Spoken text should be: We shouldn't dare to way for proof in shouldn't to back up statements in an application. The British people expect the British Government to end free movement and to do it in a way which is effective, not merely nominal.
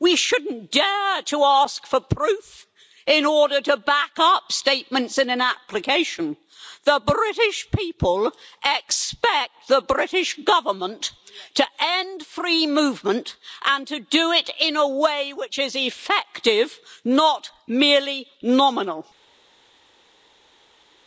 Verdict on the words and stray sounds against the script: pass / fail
fail